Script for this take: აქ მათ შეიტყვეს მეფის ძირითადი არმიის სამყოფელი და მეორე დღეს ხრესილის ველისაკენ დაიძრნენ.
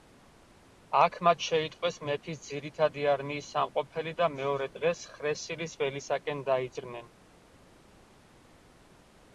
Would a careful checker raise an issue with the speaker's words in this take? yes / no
no